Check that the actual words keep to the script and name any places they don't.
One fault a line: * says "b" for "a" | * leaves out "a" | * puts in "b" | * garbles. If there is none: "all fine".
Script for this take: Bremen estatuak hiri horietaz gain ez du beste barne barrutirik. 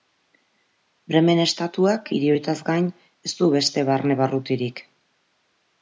all fine